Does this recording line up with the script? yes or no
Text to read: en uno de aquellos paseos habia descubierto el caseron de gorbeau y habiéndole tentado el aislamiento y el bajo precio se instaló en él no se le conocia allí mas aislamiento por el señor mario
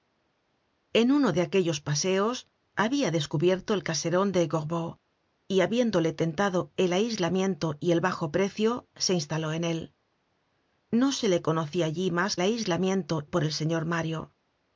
yes